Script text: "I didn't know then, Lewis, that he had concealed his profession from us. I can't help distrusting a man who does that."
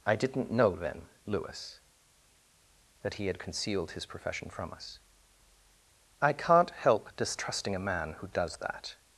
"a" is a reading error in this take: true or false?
false